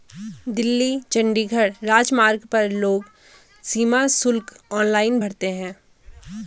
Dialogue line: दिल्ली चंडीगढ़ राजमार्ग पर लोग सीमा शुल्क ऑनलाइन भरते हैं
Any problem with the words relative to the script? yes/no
no